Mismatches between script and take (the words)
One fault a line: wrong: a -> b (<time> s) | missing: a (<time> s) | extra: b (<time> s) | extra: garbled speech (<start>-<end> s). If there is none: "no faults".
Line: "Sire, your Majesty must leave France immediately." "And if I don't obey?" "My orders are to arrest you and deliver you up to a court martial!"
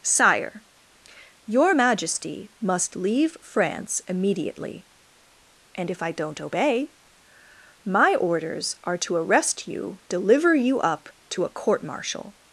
missing: and (10.0 s)